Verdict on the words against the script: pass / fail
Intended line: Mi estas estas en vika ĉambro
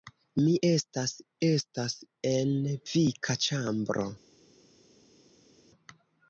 pass